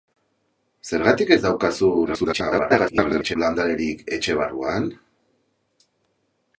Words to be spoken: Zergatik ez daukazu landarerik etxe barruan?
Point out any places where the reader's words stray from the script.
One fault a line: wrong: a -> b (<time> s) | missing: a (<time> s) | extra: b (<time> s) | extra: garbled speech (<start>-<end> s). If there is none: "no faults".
extra: garbled speech (2.1-3.4 s)